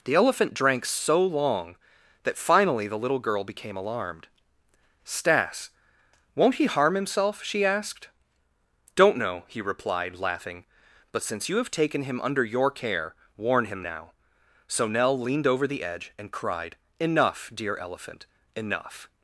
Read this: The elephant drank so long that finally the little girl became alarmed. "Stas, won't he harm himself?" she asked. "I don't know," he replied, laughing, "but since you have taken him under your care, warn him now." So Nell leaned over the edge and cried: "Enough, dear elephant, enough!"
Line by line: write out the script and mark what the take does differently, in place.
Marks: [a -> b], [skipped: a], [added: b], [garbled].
The elephant drank so long that finally the little girl became alarmed. "Stas, won't he harm himself?" she asked. [skipped: "I] don't know," he replied, laughing, "but since you have taken him under your care, warn him now." So Nell leaned over the edge and cried: "Enough, dear elephant, enough!"